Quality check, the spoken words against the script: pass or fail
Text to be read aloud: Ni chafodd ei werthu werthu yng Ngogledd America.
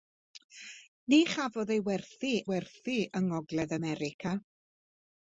pass